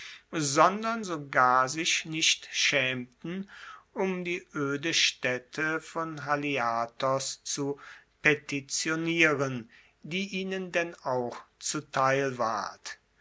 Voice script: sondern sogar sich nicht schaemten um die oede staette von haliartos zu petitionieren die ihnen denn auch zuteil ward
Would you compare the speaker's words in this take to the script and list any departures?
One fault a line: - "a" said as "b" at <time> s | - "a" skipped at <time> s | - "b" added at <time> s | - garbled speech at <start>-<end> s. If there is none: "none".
none